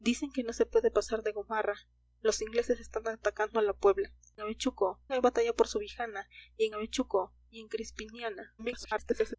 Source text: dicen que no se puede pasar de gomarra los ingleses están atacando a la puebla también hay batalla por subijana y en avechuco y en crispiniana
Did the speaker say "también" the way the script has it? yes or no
no